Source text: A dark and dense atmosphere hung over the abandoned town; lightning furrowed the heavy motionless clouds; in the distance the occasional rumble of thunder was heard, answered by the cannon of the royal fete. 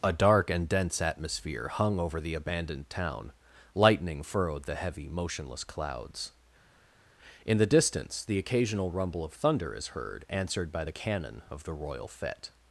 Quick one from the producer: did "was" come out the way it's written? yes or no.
no